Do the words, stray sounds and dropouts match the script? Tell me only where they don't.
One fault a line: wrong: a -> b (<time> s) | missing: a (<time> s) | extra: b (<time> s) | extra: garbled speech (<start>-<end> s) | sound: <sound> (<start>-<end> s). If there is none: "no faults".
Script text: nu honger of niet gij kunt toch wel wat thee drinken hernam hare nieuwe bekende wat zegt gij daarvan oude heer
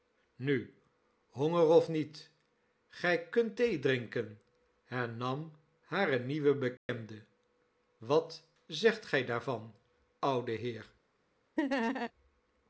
missing: toch wel wat (3.6 s)
sound: dropout (6.8-6.9 s)
sound: laugh (11.6-12.1 s)